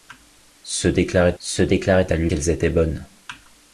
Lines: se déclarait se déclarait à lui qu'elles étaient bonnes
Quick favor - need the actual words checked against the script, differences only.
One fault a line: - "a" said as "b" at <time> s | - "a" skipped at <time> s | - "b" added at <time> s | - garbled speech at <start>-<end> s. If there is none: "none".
none